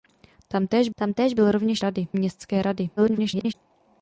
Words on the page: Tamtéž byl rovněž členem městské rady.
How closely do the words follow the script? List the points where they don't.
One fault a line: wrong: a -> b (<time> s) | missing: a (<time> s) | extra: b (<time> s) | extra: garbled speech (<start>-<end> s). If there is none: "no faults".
extra: tamtéž (0.9 s)
wrong: členem -> rady (1.8 s)
extra: garbled speech (3.0-3.5 s)